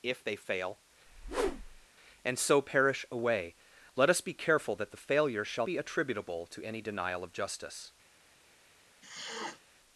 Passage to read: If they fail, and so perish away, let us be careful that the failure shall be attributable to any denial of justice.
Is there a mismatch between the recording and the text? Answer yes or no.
no